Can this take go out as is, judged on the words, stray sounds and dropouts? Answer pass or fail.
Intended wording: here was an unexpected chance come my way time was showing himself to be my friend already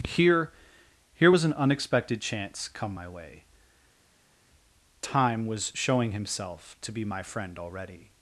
fail